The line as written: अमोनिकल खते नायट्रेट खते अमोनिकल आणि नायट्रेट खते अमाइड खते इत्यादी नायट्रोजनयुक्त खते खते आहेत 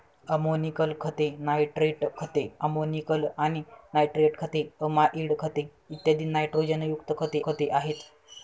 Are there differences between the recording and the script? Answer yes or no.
no